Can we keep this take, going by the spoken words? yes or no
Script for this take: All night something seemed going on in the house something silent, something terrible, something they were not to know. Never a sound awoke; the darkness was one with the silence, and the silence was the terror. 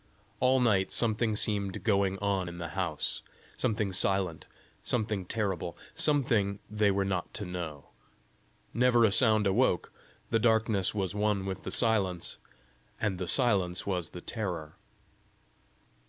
yes